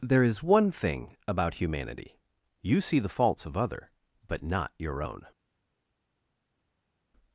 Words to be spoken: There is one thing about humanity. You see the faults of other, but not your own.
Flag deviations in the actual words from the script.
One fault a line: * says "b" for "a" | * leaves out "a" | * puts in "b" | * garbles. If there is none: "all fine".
all fine